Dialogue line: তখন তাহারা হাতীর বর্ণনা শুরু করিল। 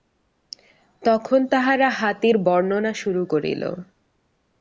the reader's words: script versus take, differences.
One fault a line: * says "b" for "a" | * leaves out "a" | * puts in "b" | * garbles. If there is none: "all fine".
all fine